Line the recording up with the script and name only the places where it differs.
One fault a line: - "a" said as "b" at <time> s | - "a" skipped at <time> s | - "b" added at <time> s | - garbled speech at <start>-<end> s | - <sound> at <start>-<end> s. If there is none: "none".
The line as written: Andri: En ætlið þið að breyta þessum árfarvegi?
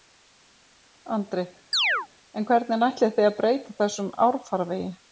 - chirp at 1.7-2.1 s
- "hvernig" added at 2.5 s